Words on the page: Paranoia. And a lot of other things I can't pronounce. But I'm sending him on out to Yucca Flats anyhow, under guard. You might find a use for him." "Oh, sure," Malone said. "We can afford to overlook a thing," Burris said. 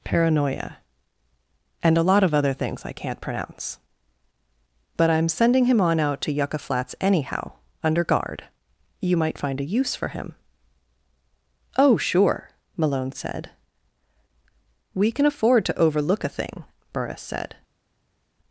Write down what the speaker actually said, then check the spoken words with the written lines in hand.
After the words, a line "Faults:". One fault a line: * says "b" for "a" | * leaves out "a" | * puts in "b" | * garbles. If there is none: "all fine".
Paranoia. And a lot of other things I can't pronounce. But I'm sending him on out to Yucca Flats anyhow, under guard. You might find a use for him." "Oh, sure," Malone said. "We can afford to overlook a thing," Burris said.
Faults:
all fine